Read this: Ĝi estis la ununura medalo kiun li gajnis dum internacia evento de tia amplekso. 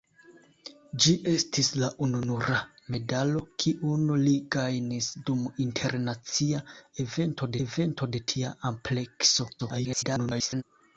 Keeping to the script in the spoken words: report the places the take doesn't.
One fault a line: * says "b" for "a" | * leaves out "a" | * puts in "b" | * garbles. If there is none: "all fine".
* puts in "evento"
* garbles